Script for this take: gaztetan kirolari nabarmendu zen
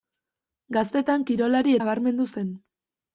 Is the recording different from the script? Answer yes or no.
no